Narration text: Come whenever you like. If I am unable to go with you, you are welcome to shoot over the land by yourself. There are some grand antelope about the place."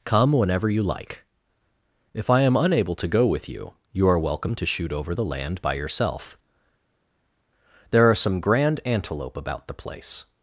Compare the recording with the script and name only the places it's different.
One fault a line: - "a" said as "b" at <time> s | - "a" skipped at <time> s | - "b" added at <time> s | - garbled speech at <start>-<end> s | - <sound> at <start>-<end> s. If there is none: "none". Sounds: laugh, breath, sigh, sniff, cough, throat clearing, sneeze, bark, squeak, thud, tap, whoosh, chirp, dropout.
none